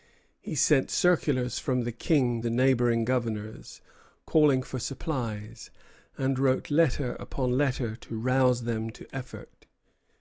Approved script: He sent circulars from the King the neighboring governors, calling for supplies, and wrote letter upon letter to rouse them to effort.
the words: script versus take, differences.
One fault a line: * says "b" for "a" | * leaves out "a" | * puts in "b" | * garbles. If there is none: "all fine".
all fine